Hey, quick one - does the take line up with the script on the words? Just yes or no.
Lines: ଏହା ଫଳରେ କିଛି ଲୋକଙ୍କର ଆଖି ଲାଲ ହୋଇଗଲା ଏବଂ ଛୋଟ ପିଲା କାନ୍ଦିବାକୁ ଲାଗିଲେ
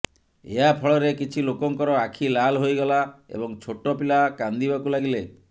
yes